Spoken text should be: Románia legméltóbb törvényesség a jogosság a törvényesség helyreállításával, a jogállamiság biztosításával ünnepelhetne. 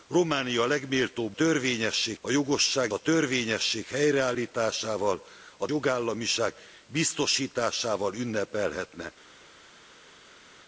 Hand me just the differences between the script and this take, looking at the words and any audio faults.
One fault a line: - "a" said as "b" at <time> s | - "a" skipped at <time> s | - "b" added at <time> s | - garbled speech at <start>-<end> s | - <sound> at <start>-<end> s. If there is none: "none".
none